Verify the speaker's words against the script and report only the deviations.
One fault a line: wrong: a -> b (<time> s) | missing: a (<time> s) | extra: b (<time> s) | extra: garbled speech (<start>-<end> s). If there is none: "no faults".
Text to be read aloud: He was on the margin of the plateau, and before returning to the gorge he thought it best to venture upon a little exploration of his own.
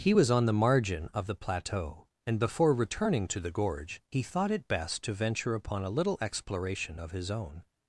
no faults